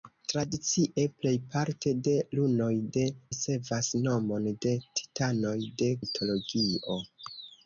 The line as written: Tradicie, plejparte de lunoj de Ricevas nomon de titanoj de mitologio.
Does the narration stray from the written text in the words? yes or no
no